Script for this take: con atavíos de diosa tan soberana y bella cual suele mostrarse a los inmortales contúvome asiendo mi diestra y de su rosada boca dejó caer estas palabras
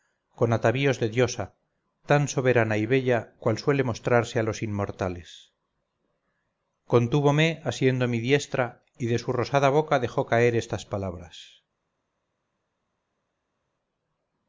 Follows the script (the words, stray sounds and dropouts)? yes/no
yes